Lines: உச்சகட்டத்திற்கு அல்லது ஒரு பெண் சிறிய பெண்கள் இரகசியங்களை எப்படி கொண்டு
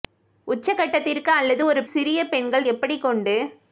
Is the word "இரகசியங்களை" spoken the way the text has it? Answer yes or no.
no